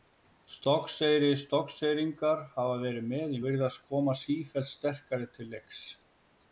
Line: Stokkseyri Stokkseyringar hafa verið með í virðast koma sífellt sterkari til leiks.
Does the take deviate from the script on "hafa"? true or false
false